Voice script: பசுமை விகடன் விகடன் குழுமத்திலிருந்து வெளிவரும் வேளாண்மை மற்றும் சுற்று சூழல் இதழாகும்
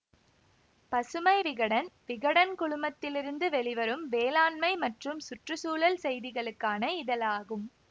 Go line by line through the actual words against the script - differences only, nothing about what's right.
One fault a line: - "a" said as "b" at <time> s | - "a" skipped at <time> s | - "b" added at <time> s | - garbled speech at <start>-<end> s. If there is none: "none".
- "செய்திகளுக்கான" added at 6.0 s